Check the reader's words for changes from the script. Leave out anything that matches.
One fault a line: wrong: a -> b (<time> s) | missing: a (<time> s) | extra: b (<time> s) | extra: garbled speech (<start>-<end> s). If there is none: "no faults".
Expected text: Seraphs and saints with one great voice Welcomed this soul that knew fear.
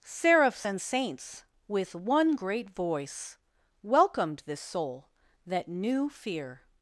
no faults